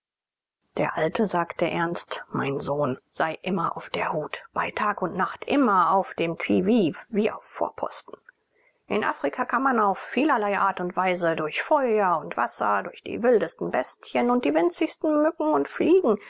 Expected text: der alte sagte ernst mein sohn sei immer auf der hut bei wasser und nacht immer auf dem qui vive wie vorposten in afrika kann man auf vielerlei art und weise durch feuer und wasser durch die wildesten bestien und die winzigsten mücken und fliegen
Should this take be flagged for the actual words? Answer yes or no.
yes